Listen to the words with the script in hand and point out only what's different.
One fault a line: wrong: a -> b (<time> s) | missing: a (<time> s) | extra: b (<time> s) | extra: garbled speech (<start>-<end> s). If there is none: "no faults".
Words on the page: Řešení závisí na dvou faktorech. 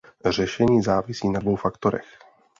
no faults